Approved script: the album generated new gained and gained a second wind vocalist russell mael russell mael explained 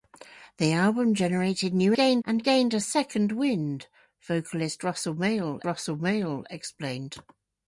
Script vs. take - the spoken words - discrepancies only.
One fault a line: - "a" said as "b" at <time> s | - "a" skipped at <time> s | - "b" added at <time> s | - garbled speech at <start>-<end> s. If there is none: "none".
none